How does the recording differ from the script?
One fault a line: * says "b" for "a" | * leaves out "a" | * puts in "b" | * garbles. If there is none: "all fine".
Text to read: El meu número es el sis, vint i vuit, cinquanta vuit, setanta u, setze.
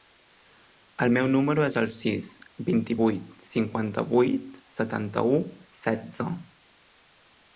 all fine